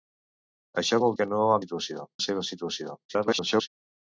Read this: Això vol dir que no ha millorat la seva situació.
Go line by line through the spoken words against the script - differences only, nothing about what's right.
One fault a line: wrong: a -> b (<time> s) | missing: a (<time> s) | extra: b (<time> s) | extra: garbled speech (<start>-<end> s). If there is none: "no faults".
missing: dir (1.2 s)
wrong: millorat -> situació (1.6 s)
extra: garbled speech (3.1-3.7 s)